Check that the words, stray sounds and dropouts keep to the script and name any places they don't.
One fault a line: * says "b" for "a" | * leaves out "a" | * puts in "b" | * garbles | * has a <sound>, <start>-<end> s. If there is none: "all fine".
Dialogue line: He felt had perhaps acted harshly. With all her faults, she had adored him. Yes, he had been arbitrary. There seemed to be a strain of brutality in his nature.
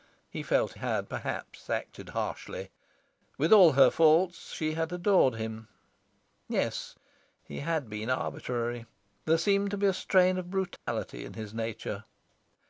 * has a dropout, 10.8-10.9 s